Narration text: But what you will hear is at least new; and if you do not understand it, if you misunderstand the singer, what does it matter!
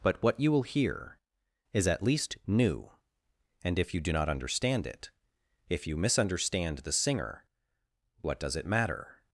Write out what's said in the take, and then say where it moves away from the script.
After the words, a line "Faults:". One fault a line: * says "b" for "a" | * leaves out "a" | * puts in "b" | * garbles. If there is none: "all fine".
But what you will hear is at least new; and if you do not understand it, if you misunderstand the singer, what does it matter!
Faults:
all fine